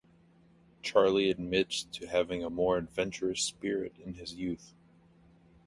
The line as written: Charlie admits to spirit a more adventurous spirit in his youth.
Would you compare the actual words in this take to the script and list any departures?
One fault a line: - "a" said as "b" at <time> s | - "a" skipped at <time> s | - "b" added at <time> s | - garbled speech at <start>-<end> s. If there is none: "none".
- "spirit" said as "having" at 2.1 s